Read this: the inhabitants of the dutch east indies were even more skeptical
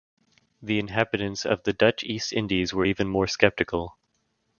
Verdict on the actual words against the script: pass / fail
pass